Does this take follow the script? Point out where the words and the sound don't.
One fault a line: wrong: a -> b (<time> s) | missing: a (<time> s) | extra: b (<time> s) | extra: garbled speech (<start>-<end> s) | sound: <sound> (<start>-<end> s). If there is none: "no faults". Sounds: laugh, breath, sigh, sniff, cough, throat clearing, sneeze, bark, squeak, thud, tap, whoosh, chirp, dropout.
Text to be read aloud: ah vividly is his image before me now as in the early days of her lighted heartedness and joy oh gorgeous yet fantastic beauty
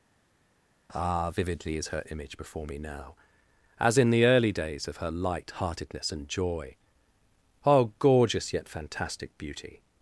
wrong: his -> her (1.9 s)
wrong: lighted -> light (5.1 s)